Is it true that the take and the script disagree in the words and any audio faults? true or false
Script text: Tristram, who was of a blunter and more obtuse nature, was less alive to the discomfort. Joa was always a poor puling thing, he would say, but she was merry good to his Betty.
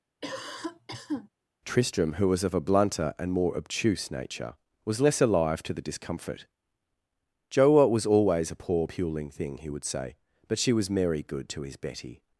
true